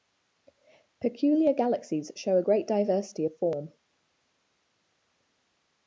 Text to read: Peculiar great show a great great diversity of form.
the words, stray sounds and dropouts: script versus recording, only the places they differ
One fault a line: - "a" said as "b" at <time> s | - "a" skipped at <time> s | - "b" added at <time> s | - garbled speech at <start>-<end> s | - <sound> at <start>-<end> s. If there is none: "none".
- "great" said as "galaxies" at 1.5 s
- "great" skipped at 2.7 s